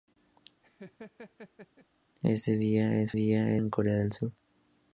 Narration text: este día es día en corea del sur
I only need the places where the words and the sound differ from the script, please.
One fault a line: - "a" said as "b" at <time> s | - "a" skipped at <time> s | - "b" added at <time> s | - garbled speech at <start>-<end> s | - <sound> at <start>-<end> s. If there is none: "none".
- laugh at 0.6-1.9 s